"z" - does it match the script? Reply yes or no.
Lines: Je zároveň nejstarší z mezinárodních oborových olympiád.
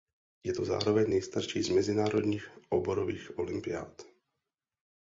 yes